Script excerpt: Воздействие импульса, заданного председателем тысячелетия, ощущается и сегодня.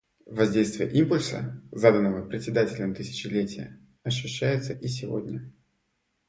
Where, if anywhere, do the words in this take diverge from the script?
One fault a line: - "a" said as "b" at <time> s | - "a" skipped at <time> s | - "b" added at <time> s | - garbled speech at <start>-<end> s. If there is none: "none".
none